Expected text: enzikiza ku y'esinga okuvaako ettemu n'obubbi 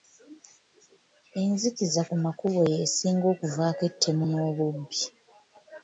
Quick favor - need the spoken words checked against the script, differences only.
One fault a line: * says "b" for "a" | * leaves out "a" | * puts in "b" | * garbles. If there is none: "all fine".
* puts in "makubo"